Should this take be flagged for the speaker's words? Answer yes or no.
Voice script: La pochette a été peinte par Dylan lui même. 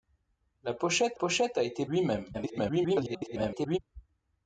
yes